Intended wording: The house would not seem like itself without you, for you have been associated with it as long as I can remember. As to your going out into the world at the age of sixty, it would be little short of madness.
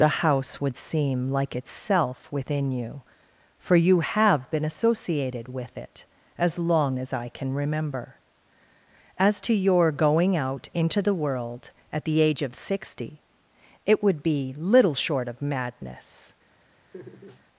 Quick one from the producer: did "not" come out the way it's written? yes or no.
no